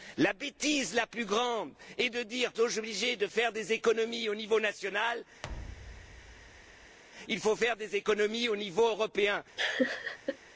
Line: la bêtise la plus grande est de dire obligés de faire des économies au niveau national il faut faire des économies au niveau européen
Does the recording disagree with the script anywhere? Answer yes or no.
no